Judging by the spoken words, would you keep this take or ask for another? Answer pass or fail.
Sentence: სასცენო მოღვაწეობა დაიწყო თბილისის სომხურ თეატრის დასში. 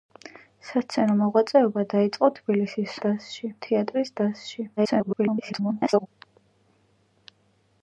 fail